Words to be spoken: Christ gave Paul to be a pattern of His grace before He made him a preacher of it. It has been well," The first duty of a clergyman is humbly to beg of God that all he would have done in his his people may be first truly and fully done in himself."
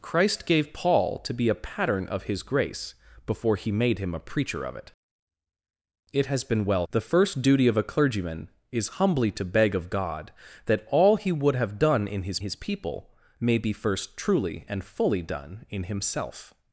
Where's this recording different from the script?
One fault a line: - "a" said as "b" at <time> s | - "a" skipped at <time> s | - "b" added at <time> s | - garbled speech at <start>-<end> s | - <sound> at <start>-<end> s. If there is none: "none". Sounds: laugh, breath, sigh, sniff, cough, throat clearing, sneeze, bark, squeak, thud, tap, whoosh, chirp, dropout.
none